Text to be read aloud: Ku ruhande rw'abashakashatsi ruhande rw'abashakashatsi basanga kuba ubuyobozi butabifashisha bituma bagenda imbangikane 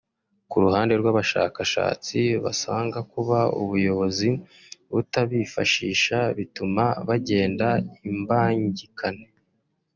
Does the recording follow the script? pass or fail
fail